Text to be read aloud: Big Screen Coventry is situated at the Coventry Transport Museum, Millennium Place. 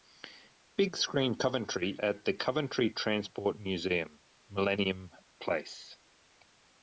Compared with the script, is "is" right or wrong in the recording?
wrong